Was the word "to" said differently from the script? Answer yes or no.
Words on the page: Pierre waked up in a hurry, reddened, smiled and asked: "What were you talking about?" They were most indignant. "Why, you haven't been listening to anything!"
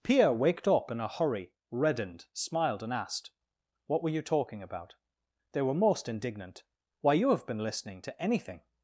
no